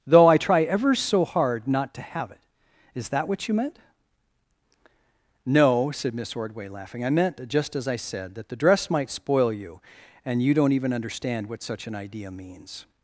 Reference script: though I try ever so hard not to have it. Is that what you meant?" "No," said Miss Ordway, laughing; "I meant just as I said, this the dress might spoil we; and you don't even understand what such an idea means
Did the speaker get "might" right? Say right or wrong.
right